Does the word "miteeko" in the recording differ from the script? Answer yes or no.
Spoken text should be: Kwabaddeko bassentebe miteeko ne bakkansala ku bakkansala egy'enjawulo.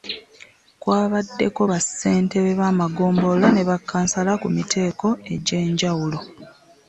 yes